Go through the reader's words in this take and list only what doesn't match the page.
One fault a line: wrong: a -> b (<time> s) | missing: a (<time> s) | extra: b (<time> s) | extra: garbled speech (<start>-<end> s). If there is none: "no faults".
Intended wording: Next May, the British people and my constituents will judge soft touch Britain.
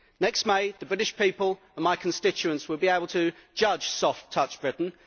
extra: be able to (2.8 s)